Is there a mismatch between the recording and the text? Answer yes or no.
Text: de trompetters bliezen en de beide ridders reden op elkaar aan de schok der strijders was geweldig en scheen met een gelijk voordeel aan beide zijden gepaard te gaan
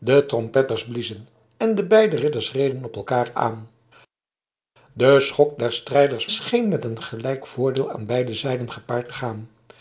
yes